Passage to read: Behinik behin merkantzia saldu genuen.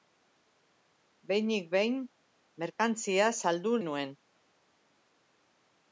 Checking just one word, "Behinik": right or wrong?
right